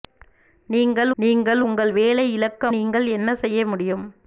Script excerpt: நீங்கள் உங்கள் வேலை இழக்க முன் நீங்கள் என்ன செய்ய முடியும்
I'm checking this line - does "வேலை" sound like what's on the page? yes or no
yes